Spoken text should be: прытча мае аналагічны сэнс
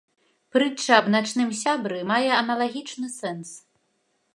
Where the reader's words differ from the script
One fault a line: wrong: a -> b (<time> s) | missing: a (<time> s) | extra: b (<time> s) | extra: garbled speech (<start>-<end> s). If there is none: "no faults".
extra: аб начным сябры (1.0 s)